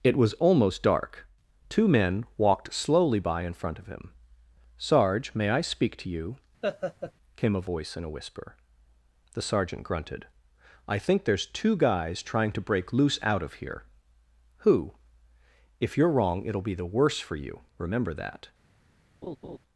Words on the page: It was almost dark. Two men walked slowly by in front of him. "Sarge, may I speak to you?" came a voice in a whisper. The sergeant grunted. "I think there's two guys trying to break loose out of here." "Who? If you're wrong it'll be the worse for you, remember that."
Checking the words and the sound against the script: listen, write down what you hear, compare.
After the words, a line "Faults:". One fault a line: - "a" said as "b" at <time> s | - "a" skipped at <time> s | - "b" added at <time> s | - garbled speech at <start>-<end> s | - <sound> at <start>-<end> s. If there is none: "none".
It was almost dark. Two men walked slowly by in front of him. "Sarge, may I speak to you?" came a voice in a whisper. The sergeant grunted. "I think there's two guys trying to break loose out of here." "Who? If you're wrong it'll be the worse for you, remember that."
Faults:
- laugh at 6.6-7.1 s
- laugh at 19.2-19.6 s